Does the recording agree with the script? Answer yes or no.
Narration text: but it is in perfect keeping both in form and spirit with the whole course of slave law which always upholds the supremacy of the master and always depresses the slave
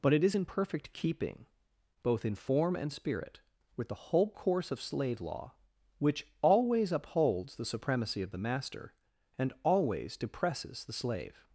yes